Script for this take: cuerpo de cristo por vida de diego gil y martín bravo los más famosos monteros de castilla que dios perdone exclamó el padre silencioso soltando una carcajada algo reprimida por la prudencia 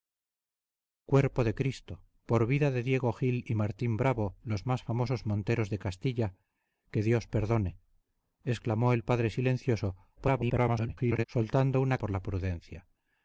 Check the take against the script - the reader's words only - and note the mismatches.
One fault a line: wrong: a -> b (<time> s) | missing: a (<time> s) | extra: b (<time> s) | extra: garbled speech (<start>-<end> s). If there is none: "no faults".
extra: garbled speech (10.2-11.2 s)
missing: carcajada algo reprimida (12.0 s)